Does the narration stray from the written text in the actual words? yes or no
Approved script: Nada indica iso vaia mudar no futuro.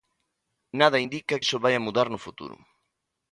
no